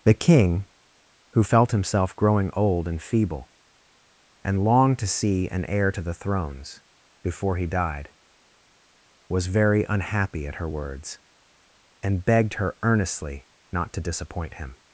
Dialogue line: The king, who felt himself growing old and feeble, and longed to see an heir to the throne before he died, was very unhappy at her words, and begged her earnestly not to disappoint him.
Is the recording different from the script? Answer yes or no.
yes